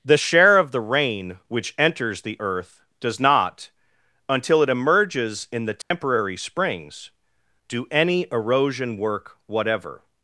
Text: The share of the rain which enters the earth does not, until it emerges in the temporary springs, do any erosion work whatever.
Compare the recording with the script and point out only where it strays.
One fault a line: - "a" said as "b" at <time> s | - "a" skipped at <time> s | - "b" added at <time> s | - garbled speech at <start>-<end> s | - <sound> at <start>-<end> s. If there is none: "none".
- dropout at 5.8-5.9 s